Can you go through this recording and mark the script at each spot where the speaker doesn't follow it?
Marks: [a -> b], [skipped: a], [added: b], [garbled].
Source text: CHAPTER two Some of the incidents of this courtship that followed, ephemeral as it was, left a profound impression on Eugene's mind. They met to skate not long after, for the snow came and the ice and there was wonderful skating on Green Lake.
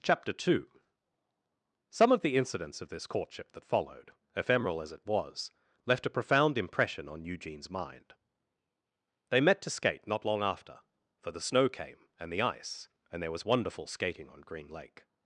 CHAPTER two Some of the incidents of this courtship that followed, ephemeral as it was, left a profound impression on Eugene's mind. They met to skate not long after, for the snow came and the ice and there was wonderful skating on Green Lake.